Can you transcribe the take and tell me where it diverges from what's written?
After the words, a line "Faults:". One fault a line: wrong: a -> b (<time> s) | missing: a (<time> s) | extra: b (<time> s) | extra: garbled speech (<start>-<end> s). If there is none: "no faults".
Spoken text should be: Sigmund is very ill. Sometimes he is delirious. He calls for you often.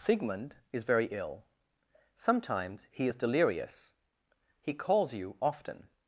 Sigmund is very ill. Sometimes he is delirious. He calls you often.
Faults:
missing: for (5.1 s)